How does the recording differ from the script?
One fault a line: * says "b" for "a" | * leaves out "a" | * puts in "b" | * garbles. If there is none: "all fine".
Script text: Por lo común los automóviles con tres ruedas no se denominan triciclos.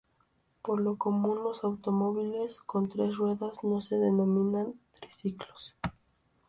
all fine